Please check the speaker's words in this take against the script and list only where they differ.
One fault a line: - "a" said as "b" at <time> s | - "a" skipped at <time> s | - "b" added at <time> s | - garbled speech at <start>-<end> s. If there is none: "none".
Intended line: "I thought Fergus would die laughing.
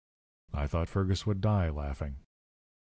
none